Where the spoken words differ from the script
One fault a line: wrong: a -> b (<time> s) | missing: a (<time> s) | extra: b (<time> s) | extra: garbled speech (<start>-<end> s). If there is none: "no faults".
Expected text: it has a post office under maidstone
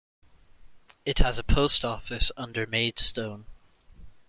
no faults